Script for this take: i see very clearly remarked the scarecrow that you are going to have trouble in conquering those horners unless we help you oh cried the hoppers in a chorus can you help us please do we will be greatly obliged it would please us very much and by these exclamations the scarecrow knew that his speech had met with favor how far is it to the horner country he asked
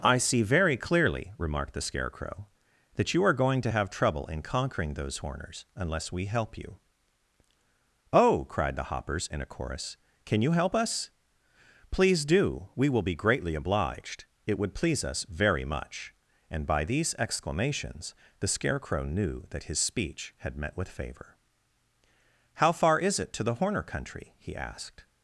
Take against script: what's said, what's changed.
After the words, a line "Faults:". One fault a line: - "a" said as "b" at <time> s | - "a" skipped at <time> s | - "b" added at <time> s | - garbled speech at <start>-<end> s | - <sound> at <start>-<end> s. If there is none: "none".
i see very clearly remarked the scarecrow that you are going to have trouble in conquering those horners unless we help you oh cried the hoppers in a chorus can you help us please do we will be greatly obliged it would please us very much and by these exclamations the scarecrow knew that his speech had met with favor how far is it to the horner country he asked
Faults:
none